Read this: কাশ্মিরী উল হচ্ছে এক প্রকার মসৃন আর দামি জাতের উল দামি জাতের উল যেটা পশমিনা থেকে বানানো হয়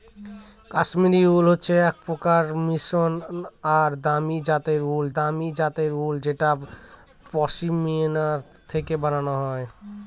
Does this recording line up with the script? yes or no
yes